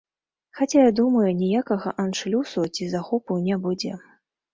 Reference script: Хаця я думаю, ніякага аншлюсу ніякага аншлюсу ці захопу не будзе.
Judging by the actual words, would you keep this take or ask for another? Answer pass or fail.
fail